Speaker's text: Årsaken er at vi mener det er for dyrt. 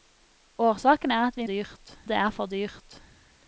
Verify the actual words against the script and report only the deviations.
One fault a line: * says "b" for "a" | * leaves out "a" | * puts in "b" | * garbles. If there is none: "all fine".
* says "dyrt" for "mener"